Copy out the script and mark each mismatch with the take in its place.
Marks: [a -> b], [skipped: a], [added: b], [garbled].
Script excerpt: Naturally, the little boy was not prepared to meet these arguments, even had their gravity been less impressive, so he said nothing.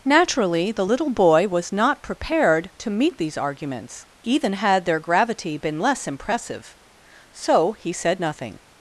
Naturally, the little boy was not prepared to meet these arguments, even had their gravity been less impressive, so he said nothing.